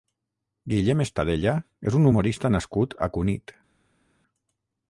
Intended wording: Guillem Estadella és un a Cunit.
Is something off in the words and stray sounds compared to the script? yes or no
yes